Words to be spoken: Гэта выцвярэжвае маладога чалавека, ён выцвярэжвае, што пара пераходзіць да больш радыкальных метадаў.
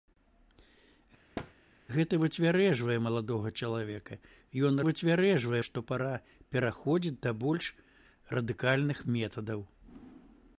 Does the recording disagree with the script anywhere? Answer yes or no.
no